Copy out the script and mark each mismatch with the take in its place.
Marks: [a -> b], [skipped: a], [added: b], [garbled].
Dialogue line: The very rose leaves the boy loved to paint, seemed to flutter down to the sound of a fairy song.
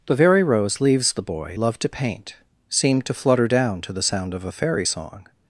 The very rose leaves the boy loved to paint, seemed to flutter down to the sound of a fairy song.